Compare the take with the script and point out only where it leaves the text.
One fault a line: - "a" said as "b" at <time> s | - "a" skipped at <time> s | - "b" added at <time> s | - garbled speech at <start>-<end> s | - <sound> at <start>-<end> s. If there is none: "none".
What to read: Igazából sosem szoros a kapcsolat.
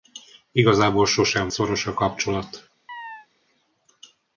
- chirp at 2.9-3.3 s